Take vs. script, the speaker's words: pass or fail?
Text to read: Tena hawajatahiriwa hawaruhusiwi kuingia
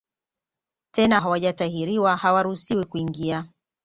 pass